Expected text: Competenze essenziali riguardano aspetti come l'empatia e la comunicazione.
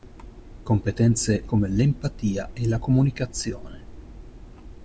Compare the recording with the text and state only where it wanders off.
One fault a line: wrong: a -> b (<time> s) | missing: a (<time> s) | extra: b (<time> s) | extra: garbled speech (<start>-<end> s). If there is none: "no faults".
missing: essenziali riguardano aspetti (1.5 s)